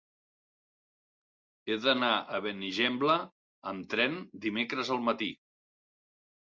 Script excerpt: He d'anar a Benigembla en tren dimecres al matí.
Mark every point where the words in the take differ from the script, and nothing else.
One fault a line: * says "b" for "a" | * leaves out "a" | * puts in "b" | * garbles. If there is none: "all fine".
* says "amb" for "en"